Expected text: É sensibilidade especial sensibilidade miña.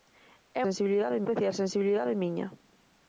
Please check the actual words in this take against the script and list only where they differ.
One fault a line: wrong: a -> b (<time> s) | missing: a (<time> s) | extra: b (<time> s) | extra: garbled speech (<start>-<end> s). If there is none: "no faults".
no faults